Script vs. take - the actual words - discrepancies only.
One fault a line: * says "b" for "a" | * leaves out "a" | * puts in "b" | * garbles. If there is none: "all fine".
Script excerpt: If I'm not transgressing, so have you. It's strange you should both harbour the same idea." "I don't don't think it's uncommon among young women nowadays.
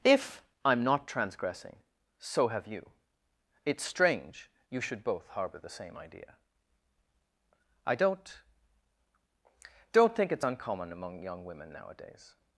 all fine